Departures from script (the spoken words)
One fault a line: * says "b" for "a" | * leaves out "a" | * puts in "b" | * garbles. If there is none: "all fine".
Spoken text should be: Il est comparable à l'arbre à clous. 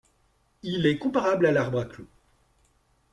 all fine